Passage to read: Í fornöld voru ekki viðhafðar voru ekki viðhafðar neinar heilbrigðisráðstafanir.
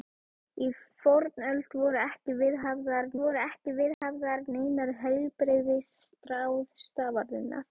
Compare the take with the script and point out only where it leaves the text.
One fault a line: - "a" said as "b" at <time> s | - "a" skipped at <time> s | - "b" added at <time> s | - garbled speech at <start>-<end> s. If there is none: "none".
none